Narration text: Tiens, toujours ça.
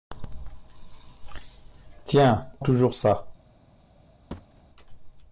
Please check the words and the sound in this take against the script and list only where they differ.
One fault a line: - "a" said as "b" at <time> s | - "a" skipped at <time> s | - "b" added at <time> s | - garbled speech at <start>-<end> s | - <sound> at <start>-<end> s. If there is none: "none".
- thud at 4.3-4.6 s